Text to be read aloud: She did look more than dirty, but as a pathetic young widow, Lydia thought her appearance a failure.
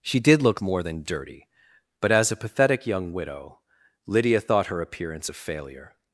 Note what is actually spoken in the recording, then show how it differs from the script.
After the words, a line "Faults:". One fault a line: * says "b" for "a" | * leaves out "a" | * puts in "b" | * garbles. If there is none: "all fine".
She did look more than dirty, but as a pathetic young widow, Lydia thought her appearance a failure.
Faults:
all fine